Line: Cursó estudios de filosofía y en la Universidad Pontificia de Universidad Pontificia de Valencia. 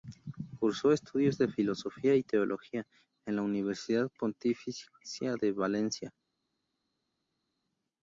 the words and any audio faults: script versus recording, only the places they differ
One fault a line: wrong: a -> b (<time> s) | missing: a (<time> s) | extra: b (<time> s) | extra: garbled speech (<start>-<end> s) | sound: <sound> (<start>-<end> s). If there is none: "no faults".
extra: teología (2.2 s)
missing: Universidad Pontificia de (5.5 s)